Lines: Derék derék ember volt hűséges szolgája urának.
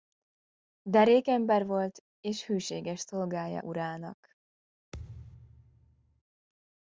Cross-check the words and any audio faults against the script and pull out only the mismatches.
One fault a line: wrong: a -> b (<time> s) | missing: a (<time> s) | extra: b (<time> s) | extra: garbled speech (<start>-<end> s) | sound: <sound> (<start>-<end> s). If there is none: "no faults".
missing: derék (1.3 s)
extra: és (2.2 s)
sound: thud (4.9-6.2 s)